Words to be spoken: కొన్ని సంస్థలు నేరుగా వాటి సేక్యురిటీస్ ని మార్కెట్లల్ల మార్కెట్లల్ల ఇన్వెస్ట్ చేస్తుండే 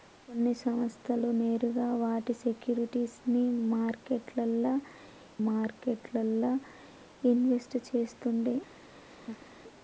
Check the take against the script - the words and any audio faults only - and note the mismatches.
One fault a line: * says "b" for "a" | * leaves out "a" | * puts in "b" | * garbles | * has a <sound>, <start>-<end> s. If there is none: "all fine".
* has a laugh, 9.0-9.5 s